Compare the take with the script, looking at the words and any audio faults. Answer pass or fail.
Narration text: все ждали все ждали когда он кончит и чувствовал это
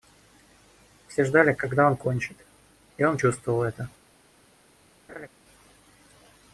fail